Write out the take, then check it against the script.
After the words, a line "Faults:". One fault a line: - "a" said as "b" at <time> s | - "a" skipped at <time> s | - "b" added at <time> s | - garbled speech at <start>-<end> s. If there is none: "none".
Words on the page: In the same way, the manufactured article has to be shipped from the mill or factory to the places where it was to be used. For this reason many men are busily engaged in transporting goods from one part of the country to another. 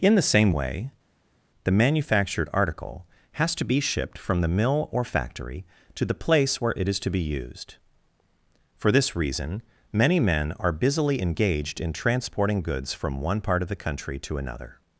In the same way, the manufactured article has to be shipped from the mill or factory to the place where it is to be used. For this reason many men are busily engaged in transporting goods from one part of the country to another.
Faults:
- "places" said as "place" at 6.2 s
- "was" said as "is" at 6.9 s